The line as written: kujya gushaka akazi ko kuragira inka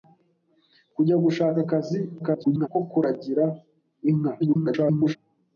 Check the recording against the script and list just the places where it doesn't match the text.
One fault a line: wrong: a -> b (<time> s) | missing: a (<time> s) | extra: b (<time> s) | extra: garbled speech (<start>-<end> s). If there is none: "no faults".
extra: garbled speech (2.2-2.7 s)
extra: garbled speech (4.4-5.2 s)